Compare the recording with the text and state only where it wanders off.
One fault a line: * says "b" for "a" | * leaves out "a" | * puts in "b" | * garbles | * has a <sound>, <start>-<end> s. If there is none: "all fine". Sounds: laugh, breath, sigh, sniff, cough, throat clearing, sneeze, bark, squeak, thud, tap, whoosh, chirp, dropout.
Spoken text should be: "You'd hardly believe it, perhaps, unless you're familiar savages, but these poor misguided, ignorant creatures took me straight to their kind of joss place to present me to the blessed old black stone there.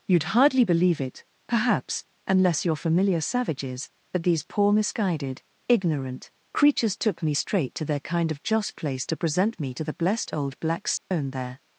* has a dropout, 11.0-11.1 s